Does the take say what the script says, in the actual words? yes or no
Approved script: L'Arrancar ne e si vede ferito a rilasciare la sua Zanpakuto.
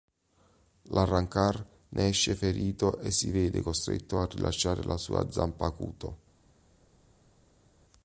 no